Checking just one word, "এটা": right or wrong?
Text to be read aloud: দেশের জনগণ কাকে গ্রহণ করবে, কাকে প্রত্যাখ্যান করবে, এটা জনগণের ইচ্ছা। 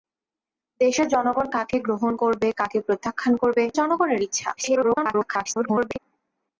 wrong